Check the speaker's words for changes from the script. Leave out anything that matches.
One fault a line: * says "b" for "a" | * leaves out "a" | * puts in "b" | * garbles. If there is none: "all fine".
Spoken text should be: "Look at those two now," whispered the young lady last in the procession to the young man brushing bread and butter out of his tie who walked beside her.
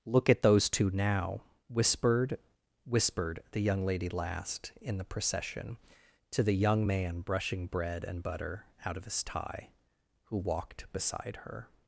* puts in "whispered"